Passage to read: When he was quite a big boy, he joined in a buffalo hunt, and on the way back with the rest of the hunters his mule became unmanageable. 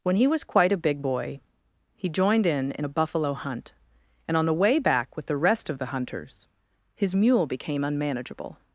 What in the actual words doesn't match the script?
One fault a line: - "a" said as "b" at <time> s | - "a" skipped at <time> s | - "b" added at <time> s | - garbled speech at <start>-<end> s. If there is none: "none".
- "in" added at 2.8 s